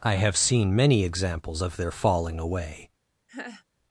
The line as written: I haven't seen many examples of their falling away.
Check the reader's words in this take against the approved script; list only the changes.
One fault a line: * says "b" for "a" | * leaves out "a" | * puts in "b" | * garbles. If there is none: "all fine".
* says "have" for "haven't"